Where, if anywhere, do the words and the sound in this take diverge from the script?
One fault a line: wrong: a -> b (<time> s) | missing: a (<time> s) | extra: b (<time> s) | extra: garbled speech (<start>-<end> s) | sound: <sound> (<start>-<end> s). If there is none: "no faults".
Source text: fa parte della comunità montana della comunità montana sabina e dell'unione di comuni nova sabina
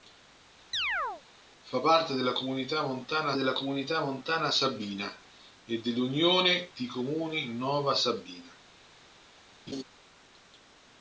sound: chirp (0.7-1.2 s)
sound: laugh (9.7-9.8 s)